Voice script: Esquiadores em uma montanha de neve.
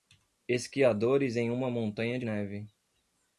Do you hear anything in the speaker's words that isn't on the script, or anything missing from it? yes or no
no